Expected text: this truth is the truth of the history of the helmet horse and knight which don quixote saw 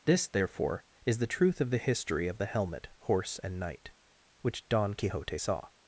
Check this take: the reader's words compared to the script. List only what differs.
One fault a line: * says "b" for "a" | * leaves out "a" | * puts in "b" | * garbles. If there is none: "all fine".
* says "therefore" for "truth"